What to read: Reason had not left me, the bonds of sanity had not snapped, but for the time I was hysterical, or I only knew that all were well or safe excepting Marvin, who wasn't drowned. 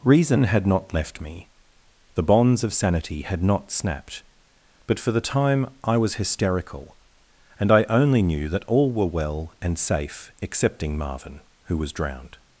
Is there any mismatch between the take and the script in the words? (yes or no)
yes